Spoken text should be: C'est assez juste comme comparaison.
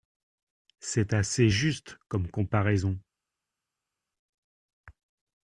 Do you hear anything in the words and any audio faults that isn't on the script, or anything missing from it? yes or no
no